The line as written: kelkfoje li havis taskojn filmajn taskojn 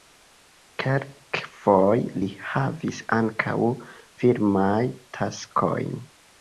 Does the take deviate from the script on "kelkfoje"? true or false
false